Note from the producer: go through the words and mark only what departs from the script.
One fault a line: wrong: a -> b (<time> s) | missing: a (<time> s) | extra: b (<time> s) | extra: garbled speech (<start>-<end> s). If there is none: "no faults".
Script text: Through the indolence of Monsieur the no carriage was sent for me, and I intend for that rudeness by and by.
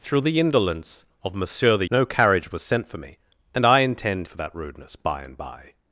no faults